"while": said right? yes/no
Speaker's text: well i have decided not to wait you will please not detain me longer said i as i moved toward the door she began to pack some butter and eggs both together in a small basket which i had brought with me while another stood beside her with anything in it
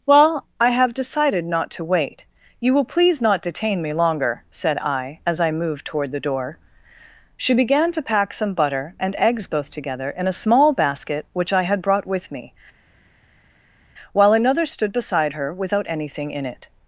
yes